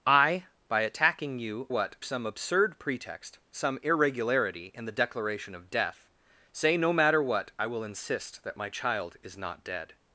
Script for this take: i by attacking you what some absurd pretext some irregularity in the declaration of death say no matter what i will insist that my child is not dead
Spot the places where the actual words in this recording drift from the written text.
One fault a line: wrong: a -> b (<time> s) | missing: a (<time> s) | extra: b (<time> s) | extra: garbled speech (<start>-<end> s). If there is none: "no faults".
no faults